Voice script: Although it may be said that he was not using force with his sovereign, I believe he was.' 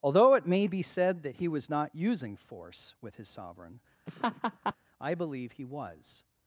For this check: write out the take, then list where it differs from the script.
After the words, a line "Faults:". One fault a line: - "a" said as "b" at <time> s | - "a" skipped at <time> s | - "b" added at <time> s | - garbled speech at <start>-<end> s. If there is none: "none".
Although it may be said that he was not using force with his sovereign, I believe he was.'
Faults:
none